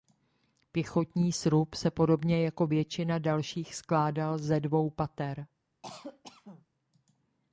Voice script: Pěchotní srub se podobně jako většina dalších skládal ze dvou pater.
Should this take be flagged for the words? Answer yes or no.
no